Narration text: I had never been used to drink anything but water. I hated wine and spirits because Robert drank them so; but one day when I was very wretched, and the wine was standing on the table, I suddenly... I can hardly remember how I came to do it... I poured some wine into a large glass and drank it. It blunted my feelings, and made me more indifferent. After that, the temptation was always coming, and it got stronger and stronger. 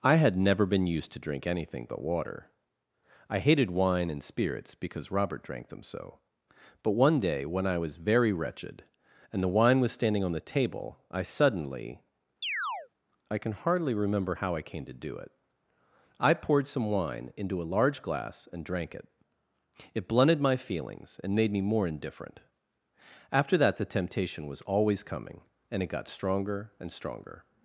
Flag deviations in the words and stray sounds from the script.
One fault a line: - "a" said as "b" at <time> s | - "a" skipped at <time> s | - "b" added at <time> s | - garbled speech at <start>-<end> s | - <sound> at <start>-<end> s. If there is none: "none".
- chirp at 12.4-12.9 s